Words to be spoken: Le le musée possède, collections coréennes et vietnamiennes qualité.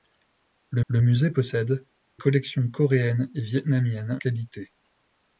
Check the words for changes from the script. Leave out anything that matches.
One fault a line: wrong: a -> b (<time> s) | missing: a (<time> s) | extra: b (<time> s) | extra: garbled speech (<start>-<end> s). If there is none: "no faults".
no faults